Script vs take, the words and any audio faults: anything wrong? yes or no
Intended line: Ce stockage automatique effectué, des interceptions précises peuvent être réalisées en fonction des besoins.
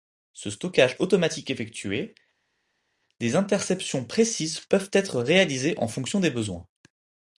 no